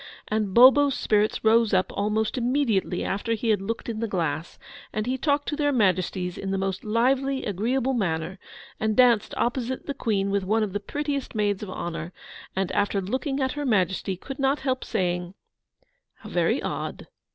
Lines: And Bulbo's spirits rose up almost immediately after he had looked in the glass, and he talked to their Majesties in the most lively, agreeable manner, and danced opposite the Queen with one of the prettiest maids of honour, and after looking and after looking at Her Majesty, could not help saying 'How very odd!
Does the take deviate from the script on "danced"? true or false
false